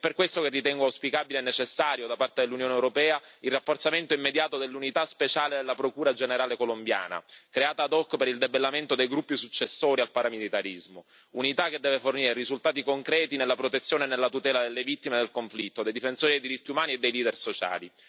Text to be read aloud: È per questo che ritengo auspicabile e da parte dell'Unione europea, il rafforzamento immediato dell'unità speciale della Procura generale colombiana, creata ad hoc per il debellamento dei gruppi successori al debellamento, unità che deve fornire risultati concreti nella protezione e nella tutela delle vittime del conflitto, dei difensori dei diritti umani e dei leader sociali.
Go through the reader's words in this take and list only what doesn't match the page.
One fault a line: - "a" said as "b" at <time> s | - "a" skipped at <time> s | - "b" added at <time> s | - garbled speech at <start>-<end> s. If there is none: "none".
- "necessario" added at 1.4 s
- "debellamento" said as "paramilitarismo" at 10.1 s